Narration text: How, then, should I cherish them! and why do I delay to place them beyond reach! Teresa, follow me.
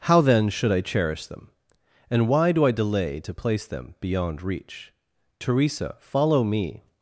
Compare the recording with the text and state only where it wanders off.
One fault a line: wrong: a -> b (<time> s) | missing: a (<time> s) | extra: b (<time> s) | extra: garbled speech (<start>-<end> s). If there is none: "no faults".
no faults